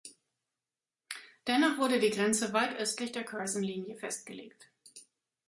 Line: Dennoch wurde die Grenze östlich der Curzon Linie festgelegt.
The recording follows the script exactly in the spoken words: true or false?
false